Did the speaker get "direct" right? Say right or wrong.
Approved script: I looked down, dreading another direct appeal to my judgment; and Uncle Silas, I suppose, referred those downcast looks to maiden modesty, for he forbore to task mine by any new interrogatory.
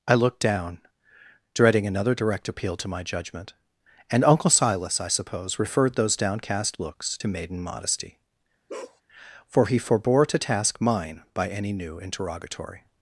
right